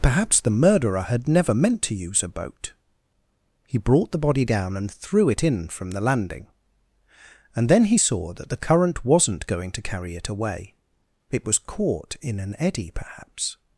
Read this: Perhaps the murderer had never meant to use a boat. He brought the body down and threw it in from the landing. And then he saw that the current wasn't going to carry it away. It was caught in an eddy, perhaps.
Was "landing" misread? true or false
false